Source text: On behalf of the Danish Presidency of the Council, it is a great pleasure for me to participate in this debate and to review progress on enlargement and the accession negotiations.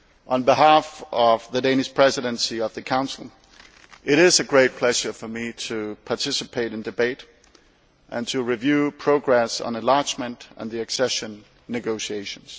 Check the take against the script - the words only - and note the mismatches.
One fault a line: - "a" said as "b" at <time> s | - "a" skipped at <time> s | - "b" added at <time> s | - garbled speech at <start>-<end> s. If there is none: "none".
- "this" skipped at 6.8 s